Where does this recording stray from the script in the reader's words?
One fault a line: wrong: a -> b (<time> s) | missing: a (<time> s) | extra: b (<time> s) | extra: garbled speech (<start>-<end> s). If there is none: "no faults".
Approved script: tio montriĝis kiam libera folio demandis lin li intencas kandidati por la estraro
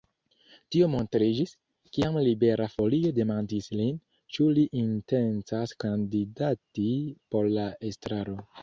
extra: ĉu (4.4 s)